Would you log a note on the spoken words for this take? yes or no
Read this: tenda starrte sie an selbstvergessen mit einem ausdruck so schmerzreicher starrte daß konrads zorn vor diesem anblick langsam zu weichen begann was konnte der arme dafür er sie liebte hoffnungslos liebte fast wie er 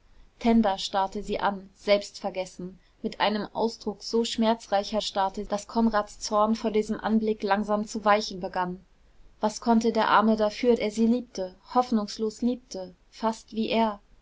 no